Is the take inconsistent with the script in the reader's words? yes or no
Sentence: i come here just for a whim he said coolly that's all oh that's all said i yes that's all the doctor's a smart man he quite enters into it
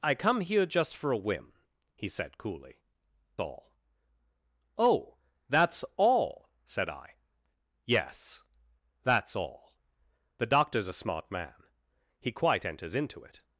yes